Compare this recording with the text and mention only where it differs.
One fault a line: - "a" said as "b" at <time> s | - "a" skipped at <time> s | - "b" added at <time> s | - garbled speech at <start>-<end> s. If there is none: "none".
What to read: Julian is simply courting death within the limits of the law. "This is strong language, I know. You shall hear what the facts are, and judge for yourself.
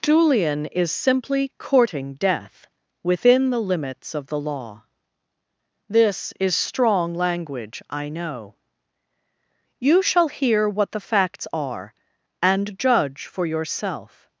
none